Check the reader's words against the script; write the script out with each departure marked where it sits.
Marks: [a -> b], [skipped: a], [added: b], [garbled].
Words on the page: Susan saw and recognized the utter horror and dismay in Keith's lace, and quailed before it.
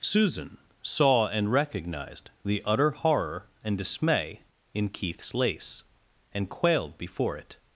Susan saw and recognized the utter horror and dismay in Keith's lace, and quailed before it.